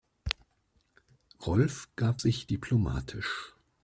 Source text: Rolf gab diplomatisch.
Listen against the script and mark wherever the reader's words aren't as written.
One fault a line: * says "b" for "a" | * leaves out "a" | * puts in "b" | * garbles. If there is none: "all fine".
* puts in "sich"